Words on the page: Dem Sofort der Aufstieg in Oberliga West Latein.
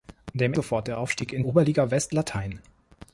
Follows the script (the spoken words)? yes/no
yes